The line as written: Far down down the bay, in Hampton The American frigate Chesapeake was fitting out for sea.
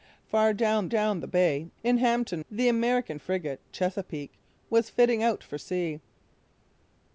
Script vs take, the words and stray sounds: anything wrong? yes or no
no